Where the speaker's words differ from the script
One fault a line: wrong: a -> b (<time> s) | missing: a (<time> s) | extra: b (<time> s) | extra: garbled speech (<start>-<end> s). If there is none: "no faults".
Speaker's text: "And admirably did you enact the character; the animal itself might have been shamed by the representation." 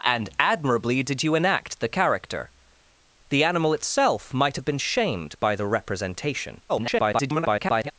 extra: garbled speech (6.7-7.9 s)